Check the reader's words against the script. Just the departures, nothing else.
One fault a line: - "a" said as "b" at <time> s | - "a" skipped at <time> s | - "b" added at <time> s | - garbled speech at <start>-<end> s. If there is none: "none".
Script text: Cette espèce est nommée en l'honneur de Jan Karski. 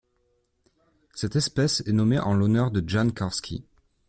none